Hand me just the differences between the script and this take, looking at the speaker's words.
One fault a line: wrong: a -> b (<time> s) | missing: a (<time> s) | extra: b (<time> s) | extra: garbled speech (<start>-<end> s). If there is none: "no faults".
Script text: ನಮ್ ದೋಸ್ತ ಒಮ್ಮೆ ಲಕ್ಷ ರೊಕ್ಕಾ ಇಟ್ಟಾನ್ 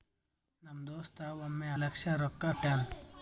no faults